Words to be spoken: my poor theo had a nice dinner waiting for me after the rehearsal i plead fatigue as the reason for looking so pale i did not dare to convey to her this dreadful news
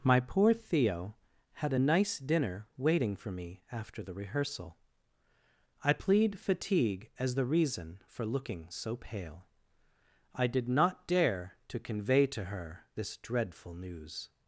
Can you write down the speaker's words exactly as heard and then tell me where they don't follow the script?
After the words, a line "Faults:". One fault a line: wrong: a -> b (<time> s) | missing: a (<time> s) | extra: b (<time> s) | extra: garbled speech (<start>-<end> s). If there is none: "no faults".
my poor theo had a nice dinner waiting for me after the rehearsal i plead fatigue as the reason for looking so pale i did not dare to convey to her this dreadful news
Faults:
no faults